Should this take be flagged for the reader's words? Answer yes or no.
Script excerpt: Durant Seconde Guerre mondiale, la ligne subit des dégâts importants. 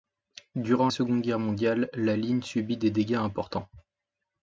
no